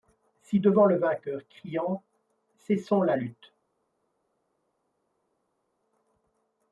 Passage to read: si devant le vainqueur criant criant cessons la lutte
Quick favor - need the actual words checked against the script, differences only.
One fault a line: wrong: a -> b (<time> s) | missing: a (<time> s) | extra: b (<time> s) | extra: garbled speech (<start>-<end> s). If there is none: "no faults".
missing: criant (2.0 s)